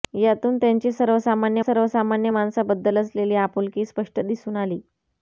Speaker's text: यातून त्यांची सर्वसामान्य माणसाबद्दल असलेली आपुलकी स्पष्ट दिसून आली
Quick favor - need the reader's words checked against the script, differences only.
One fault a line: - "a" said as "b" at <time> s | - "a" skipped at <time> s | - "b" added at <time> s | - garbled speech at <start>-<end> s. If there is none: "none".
- "सर्वसामान्य" added at 1.6 s